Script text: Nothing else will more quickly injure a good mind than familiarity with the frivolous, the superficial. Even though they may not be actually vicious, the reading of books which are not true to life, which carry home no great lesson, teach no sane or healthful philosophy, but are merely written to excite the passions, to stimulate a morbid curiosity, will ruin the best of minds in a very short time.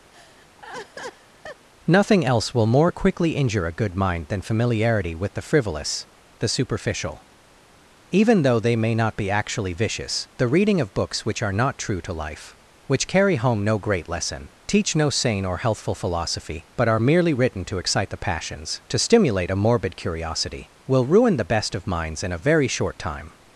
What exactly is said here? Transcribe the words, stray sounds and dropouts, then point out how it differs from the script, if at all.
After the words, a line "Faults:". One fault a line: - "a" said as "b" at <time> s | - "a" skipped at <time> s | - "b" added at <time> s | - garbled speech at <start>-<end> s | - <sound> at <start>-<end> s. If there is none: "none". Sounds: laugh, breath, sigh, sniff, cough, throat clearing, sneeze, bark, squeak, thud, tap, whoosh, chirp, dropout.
Nothing else will more quickly injure a good mind than familiarity with the frivolous, the superficial. Even though they may not be actually vicious, the reading of books which are not true to life, which carry home no great lesson, teach no sane or healthful philosophy, but are merely written to excite the passions, to stimulate a morbid curiosity, will ruin the best of minds in a very short time.
Faults:
- laugh at 0.1-1.7 s